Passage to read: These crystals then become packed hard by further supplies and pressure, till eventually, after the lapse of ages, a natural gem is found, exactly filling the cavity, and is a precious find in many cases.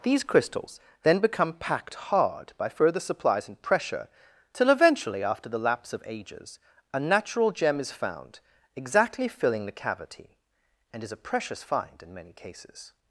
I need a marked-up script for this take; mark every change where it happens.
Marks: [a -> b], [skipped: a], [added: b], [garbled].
These crystals then become packed hard by further supplies and pressure, till eventually, after the lapse of ages, a natural gem is found, exactly filling the cavity, and is a precious find in many cases.